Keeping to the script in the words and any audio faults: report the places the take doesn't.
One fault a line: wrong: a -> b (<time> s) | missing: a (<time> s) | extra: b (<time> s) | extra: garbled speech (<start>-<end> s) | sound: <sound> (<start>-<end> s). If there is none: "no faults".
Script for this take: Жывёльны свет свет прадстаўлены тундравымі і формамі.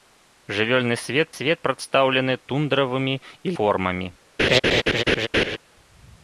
sound: laugh (4.4-5.6 s)